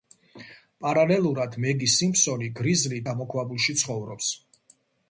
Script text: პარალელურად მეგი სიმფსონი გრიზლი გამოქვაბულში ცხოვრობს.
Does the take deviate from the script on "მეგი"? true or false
false